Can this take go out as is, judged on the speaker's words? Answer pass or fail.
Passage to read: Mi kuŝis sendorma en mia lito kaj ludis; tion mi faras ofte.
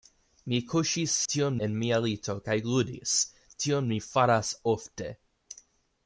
fail